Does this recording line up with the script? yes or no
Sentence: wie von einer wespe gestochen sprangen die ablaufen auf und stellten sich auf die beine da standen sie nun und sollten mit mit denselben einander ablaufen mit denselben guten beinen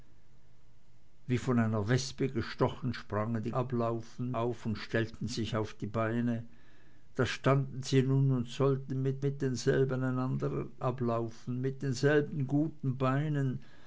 yes